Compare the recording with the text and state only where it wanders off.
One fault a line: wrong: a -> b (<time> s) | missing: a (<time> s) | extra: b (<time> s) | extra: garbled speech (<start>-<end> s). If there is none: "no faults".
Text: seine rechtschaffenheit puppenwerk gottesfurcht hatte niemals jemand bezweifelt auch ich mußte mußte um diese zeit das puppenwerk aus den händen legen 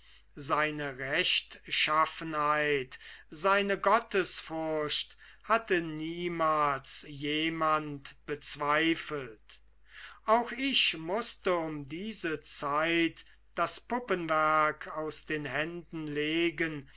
wrong: puppenwerk -> seine (3.3 s)
missing: mußte (11.5 s)